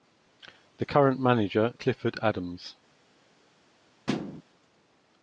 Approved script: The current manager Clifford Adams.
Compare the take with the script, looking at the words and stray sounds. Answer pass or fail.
fail